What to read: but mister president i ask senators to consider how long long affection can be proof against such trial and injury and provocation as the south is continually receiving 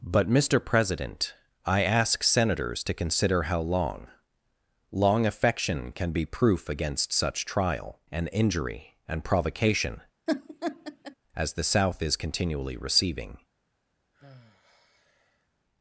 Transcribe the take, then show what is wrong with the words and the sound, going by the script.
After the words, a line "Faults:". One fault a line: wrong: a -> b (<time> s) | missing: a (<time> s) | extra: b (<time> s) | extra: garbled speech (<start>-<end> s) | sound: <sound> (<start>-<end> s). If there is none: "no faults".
but mister president i ask senators to consider how long long affection can be proof against such trial and injury and provocation as the south is continually receiving
Faults:
sound: laugh (10.3-11.2 s)
sound: sigh (14.1-15.5 s)